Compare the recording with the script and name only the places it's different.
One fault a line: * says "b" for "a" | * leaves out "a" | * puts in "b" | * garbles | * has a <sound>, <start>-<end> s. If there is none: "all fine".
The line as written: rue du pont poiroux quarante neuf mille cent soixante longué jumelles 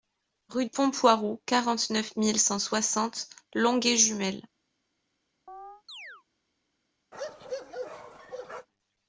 * leaves out "du"
* has a chirp, 5.5-6.2 s
* has a bark, 7.1-8.7 s